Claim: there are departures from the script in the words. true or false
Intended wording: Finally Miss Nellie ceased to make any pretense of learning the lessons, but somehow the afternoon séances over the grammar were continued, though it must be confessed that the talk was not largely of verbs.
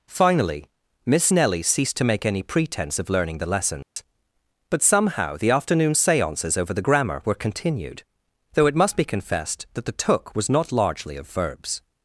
true